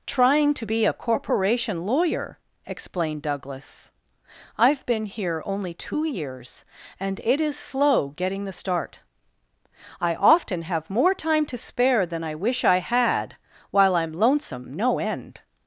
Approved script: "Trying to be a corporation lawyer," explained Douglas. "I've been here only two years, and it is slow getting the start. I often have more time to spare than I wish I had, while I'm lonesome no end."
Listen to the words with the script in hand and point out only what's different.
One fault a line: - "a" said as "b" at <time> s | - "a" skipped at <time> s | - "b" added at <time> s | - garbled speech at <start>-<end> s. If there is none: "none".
none